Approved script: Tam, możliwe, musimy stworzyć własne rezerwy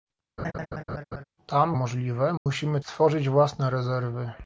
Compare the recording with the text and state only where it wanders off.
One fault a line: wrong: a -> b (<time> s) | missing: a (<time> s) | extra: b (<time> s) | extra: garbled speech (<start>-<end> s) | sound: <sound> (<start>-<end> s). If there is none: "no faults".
sound: laugh (0.4-1.2 s)
sound: dropout (2.4-2.5 s)